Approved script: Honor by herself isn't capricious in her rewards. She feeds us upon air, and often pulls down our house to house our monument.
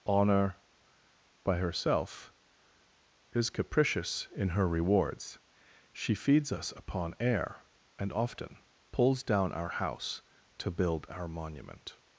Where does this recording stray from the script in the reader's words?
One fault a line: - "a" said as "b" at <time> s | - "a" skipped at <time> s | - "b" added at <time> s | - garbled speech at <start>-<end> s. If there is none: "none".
- "isn't" said as "is" at 3.3 s
- "house" said as "build" at 10.7 s